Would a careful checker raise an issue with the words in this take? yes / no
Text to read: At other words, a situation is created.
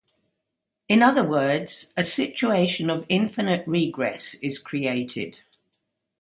yes